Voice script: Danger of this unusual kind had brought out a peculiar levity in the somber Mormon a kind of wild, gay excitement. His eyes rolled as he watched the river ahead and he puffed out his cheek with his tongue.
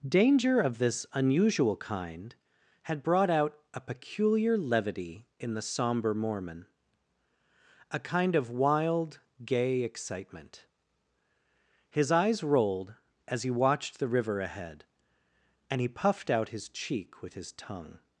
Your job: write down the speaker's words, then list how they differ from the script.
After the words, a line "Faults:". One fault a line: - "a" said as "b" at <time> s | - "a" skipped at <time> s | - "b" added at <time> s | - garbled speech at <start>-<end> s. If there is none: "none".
Danger of this unusual kind had brought out a peculiar levity in the somber Mormon a kind of wild, gay excitement. His eyes rolled as he watched the river ahead and he puffed out his cheek with his tongue.
Faults:
none